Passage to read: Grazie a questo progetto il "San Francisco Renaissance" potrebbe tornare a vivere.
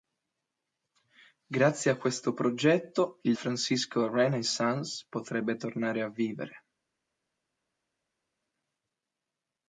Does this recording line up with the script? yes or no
no